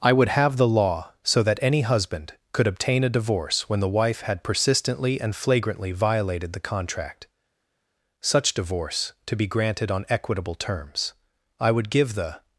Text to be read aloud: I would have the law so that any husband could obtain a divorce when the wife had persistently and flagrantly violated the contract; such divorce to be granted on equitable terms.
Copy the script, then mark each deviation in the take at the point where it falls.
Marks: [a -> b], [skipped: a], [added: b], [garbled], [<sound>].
I would have the law so that any husband could obtain a divorce when the wife had persistently and flagrantly violated the contract; such divorce to be granted on equitable terms. [added: I would give the]